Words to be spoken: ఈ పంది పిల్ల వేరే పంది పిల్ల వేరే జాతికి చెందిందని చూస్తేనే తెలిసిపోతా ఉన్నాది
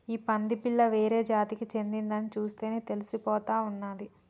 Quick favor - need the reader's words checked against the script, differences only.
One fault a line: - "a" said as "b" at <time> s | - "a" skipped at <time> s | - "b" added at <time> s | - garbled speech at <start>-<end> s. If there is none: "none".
- "పంది పిల్ల వేరే" skipped at 1.2 s